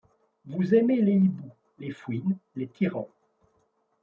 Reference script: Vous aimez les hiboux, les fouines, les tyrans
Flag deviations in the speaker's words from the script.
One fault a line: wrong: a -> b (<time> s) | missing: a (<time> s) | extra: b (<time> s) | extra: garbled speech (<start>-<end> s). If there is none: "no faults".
no faults